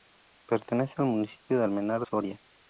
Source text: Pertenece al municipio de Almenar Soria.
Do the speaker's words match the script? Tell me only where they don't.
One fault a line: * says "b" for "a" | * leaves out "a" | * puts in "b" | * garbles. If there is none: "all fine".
all fine